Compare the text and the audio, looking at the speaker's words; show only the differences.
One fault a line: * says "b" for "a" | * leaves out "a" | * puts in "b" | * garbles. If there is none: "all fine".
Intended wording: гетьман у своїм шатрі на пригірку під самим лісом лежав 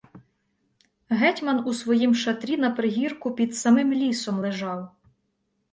all fine